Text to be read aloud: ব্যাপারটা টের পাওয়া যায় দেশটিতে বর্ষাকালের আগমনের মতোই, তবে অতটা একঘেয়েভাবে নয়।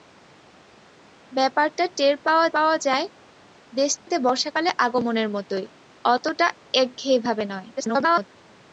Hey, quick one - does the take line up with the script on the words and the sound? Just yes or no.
no